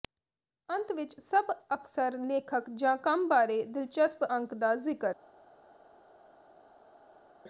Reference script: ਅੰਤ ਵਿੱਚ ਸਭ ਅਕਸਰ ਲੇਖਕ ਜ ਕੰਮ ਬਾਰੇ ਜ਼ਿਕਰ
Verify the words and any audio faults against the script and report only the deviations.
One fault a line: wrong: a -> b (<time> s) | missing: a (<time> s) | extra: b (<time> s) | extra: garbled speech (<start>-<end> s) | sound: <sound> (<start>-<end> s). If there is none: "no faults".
extra: ਦਿਲਚਸਪ ਅੰਕ ਦਾ (3.6 s)